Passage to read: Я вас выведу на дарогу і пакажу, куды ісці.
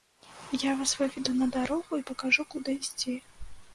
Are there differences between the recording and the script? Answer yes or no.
no